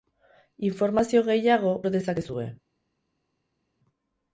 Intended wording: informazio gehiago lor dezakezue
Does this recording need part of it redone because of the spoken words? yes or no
no